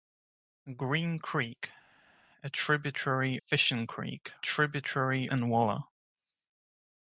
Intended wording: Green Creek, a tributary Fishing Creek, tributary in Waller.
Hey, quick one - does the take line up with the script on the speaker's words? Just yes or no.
yes